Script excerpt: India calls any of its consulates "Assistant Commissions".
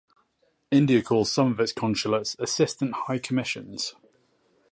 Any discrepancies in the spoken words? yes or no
yes